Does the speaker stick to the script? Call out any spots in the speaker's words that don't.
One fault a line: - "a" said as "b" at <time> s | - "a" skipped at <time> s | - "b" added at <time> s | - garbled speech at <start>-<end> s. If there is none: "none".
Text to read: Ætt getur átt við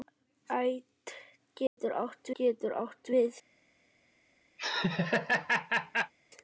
- "getur átt" added at 2.4 s